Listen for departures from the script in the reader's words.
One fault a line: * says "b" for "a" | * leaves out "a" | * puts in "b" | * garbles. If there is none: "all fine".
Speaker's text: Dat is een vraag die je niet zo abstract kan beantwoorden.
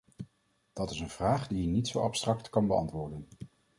all fine